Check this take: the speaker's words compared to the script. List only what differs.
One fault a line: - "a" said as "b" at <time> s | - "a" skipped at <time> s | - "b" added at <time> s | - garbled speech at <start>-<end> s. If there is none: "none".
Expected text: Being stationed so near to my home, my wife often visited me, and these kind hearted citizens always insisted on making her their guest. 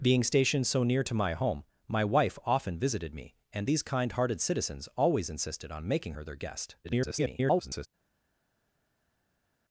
- garbled speech at 6.8-7.9 s